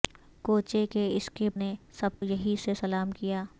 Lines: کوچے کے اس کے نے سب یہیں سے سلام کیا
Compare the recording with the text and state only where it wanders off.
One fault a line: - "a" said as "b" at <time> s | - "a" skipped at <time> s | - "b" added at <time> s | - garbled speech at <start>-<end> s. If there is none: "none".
none